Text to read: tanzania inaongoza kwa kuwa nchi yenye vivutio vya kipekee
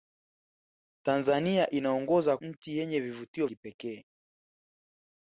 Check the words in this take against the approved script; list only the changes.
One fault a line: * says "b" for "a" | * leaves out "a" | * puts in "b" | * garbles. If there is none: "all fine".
* leaves out "kwa kuwa"
* leaves out "vya"